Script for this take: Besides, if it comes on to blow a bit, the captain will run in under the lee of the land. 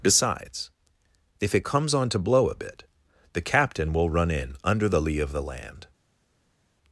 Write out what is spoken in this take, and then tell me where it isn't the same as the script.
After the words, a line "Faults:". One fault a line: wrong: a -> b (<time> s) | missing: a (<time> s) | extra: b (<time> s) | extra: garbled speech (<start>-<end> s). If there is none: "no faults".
Besides, if it comes on to blow a bit, the captain will run in under the lee of the land.
Faults:
no faults